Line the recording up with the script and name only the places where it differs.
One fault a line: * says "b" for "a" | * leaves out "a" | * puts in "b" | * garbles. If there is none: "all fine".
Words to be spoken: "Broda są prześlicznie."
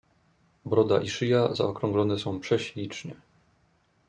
* puts in "i szyja zaokrąglone"